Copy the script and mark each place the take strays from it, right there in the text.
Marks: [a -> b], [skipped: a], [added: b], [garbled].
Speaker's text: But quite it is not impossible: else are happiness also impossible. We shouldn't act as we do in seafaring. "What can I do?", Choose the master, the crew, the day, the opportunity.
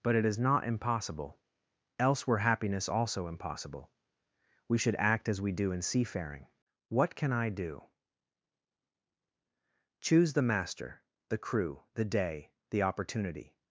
But [skipped: quite] it is not impossible: else [are -> were] happiness also impossible. We [shouldn't -> should] act as we do in seafaring. "What can I do?", Choose the master, the crew, the day, the opportunity.